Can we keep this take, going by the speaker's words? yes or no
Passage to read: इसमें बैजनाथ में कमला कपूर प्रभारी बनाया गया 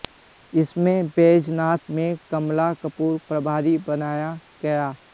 yes